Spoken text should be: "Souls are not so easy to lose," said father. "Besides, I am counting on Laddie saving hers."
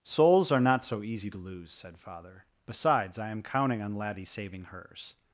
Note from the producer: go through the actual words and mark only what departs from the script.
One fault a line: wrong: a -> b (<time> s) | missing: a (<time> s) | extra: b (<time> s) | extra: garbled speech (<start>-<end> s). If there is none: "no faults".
no faults